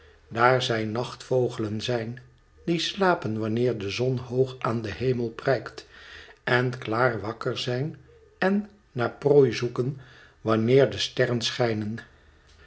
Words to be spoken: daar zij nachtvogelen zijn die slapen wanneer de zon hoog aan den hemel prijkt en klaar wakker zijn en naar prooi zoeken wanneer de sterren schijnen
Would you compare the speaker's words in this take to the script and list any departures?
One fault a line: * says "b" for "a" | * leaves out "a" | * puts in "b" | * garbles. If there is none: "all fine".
all fine